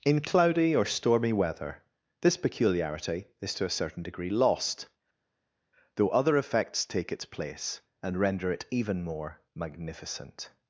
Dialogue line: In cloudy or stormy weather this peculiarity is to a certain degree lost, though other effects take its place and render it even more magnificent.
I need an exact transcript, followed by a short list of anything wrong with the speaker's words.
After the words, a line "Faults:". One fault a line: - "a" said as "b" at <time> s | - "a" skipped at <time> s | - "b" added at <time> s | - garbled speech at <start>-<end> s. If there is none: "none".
In cloudy or stormy weather this peculiarity is to a certain degree lost, though other effects take its place and render it even more magnificent.
Faults:
none